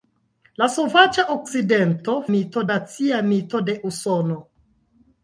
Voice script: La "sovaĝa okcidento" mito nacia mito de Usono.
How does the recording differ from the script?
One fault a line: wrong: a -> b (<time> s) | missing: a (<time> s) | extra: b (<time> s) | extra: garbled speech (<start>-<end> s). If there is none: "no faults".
no faults